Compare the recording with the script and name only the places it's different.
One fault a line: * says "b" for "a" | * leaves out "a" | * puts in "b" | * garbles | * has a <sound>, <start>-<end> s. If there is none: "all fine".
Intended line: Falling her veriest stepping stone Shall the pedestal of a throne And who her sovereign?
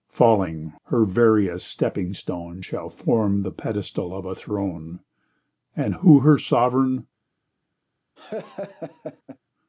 * puts in "form"
* has a laugh, 8.2-9.4 s